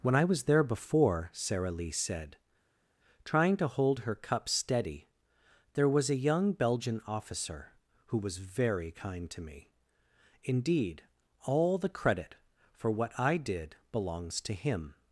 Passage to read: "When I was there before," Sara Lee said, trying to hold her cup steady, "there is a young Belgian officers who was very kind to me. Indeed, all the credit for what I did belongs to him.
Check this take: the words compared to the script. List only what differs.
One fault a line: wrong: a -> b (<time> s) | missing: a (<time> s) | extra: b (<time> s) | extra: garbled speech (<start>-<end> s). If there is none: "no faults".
wrong: is -> was (5.9 s)
wrong: officers -> officer (7.1 s)